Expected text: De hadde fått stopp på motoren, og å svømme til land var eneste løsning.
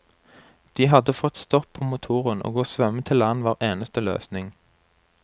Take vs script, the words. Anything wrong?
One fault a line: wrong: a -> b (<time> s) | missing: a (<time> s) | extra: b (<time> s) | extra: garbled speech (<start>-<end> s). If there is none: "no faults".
no faults